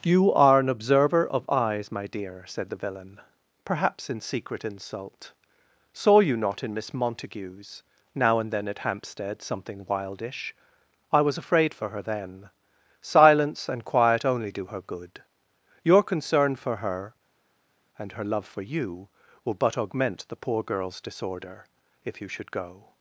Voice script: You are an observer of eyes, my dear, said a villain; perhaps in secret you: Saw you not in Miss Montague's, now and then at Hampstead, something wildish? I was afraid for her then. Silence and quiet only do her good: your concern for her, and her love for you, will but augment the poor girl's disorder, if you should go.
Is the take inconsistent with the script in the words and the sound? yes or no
yes